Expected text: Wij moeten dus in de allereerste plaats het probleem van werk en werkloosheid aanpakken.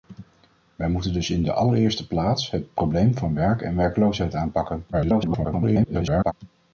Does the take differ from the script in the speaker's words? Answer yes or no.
yes